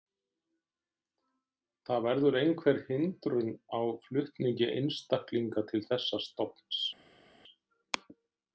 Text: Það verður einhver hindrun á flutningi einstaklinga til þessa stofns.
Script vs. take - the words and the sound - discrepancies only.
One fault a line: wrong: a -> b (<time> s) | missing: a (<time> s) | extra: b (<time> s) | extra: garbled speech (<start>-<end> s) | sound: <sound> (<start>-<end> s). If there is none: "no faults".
no faults